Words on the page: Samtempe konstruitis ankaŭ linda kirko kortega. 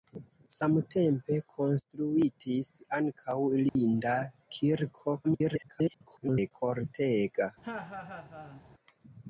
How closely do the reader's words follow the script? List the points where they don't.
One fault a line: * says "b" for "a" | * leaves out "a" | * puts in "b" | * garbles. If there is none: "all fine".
* garbles